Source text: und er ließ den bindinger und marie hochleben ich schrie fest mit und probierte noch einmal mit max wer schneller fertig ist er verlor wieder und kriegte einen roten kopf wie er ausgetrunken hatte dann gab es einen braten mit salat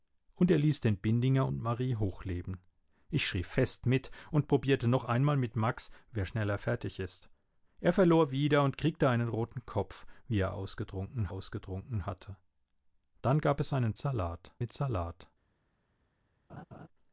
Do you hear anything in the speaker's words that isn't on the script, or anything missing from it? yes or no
yes